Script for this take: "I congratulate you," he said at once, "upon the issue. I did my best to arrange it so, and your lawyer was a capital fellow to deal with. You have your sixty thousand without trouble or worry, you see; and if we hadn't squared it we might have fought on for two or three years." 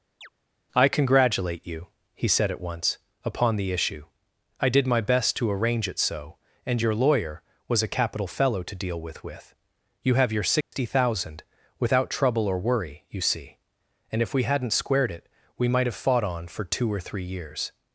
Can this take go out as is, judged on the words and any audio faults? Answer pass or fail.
fail